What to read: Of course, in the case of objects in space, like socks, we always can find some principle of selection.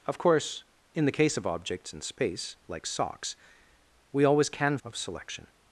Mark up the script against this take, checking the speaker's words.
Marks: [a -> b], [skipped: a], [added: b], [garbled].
Of course, in the case of objects in space, like socks, we always can [skipped: find some principle] of selection.